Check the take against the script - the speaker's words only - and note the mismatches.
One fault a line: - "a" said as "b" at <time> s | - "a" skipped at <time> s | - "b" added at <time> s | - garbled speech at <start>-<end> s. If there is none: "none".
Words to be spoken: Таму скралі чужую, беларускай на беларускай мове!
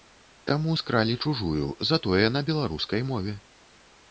- "беларускай" said as "затое" at 1.9 s